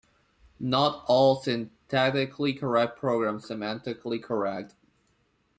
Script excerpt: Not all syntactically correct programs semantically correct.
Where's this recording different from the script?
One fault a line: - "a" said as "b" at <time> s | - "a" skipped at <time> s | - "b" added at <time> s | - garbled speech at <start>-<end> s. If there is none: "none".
none